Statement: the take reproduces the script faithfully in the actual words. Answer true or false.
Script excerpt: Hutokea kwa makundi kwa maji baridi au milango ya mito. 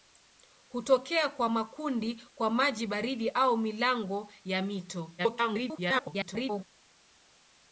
false